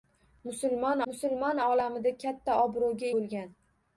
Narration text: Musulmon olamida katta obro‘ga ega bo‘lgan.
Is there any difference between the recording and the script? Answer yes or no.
yes